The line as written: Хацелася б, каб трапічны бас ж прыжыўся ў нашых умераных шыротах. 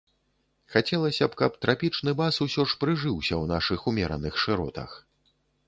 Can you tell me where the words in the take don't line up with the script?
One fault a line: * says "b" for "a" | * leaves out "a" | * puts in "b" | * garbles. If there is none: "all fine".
* puts in "усё"